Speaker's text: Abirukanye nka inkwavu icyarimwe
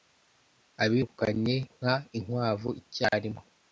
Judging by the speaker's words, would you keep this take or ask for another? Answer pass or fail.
pass